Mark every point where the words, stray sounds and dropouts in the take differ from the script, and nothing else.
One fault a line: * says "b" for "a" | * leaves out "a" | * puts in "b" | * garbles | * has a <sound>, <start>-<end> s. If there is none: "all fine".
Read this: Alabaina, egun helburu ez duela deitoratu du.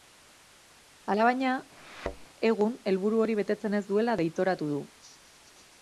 * has a thud, 1.8-2.3 s
* puts in "hori betetzen"